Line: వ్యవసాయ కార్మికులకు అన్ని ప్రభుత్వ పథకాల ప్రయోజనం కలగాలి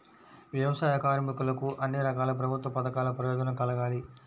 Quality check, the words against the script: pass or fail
fail